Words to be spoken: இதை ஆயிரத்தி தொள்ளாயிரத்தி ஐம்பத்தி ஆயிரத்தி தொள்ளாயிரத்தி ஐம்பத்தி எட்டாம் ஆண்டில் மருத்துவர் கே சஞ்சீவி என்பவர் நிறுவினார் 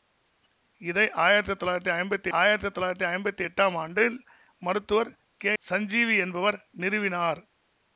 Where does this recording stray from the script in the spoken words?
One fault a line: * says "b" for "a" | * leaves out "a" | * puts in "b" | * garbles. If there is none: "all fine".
all fine